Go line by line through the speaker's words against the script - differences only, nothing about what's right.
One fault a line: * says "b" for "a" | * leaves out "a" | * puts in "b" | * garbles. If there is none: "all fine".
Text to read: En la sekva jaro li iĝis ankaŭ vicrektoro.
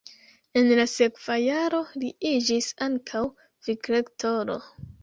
all fine